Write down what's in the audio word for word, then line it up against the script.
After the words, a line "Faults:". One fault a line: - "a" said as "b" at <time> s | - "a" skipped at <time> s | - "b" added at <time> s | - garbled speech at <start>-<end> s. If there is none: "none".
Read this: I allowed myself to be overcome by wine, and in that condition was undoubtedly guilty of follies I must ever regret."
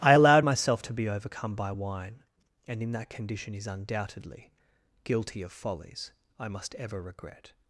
I allowed myself to be overcome by wine, and in that condition is undoubtedly guilty of follies I must ever regret."
Faults:
- "was" said as "is" at 3.5 s